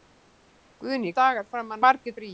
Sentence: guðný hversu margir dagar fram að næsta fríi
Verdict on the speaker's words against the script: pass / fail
fail